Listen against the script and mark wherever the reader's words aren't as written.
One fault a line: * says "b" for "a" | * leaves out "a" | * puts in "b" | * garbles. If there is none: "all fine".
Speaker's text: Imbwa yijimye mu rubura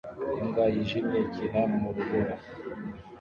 * puts in "ikina"